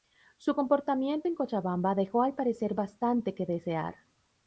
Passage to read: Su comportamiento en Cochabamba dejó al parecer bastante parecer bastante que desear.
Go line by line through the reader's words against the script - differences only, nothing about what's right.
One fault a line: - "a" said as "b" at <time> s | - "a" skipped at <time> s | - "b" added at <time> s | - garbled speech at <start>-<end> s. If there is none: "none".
- "parecer bastante" skipped at 3.3 s